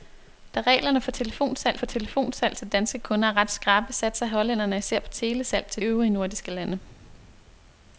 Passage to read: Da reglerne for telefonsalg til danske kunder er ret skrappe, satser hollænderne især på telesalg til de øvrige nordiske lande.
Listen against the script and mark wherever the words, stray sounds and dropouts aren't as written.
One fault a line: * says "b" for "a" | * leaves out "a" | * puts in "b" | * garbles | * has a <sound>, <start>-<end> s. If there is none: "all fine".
* puts in "for telefonsalg"
* leaves out "de"